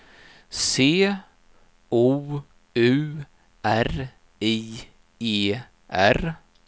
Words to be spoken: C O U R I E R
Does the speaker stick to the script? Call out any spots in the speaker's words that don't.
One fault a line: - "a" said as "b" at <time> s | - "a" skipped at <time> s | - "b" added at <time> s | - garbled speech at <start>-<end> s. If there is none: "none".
none